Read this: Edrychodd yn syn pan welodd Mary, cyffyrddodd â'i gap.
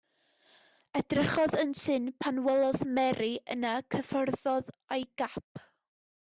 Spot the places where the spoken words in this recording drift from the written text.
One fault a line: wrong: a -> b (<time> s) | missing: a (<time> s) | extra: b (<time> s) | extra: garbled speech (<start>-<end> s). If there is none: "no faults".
extra: yna (3.6 s)